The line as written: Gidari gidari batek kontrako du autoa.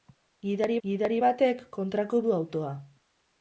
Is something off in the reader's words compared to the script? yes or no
no